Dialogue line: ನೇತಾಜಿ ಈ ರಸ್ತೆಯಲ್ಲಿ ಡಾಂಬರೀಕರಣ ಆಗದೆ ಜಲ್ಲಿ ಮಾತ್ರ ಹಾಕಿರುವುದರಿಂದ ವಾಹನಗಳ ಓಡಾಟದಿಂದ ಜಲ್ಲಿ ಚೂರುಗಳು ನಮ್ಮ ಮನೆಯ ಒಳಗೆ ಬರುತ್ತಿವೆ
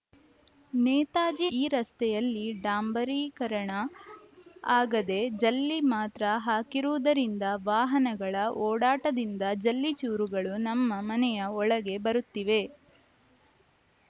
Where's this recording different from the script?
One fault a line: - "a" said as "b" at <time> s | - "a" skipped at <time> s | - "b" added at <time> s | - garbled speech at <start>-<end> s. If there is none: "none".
none